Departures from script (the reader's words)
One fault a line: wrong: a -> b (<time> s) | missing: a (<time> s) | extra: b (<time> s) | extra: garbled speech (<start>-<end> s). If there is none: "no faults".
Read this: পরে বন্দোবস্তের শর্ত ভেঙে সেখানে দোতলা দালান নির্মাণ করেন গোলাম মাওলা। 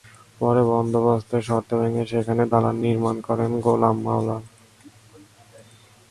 missing: দোতলা (2.4 s)